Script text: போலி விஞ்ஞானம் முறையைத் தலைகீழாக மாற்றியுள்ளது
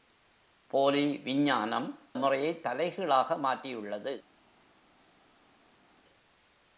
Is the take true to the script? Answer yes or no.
yes